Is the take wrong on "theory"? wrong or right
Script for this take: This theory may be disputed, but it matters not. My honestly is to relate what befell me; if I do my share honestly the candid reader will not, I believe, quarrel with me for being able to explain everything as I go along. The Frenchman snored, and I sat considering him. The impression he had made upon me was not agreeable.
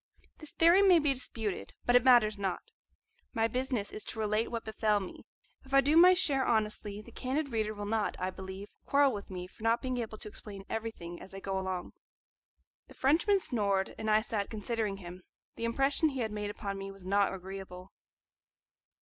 right